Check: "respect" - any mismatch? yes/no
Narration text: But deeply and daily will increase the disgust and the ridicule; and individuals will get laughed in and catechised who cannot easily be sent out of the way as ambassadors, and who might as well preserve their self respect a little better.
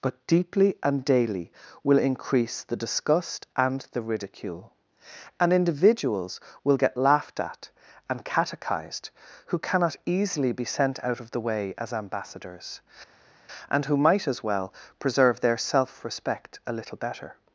no